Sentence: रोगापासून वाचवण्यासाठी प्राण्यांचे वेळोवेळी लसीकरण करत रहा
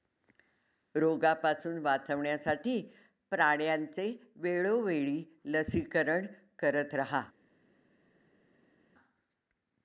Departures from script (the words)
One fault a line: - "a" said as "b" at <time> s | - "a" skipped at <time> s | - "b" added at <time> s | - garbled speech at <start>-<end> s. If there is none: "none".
none